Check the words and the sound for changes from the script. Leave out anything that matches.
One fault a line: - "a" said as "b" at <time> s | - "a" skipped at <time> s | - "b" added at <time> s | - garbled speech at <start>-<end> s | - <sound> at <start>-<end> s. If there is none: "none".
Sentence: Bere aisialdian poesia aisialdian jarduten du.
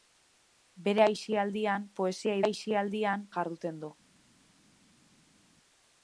none